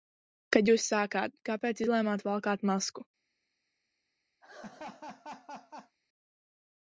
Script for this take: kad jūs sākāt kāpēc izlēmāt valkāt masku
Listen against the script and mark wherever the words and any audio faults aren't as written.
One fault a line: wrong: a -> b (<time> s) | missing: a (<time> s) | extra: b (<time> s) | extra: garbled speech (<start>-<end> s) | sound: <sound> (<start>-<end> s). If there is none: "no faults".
sound: laugh (4.4-6.0 s)